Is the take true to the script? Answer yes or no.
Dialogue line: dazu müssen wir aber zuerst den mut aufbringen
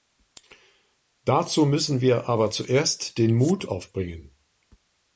yes